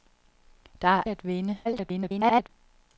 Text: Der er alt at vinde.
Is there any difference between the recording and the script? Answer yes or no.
yes